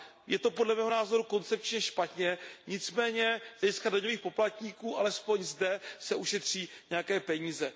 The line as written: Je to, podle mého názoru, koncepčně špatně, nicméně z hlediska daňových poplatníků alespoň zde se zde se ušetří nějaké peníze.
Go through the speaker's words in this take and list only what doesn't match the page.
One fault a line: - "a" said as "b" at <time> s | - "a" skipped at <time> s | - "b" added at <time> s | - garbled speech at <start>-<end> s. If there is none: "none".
- "zde se" skipped at 6.1 s